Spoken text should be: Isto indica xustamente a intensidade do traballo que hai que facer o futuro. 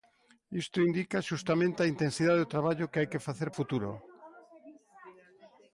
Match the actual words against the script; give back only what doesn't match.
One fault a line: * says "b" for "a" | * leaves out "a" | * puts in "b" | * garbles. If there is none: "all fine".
all fine